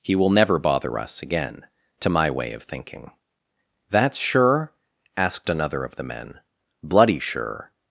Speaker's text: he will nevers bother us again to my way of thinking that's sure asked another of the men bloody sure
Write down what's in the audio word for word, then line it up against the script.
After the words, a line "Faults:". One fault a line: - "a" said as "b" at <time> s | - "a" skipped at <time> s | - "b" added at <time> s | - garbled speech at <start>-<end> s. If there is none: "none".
he will never bother us again to my way of thinking that's sure asked another of the men bloody sure
Faults:
- "nevers" said as "never" at 0.3 s